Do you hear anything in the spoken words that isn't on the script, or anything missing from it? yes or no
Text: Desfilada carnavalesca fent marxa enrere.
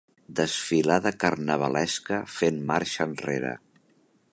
no